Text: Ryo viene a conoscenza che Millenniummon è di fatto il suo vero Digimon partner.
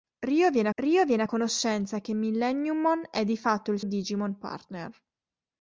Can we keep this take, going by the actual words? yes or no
no